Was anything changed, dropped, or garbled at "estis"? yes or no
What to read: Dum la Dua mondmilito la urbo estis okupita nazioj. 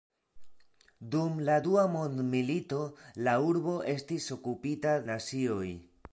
no